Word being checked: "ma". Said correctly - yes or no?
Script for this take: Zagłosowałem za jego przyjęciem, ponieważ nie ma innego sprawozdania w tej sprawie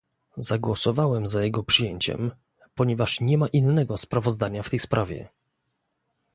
yes